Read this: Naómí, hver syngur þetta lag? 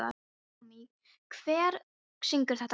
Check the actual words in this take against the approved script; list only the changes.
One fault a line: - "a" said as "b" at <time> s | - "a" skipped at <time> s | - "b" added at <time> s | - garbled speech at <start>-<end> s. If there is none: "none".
none